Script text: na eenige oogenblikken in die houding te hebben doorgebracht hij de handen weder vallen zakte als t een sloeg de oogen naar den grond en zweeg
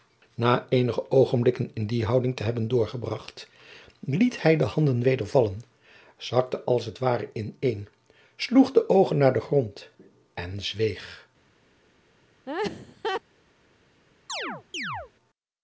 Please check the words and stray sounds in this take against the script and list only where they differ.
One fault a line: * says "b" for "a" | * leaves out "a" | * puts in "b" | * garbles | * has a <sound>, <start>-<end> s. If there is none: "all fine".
* puts in "liet"
* puts in "ware in"
* has a laugh, 12.5-13.2 s
* has a chirp, 14.3-15.1 s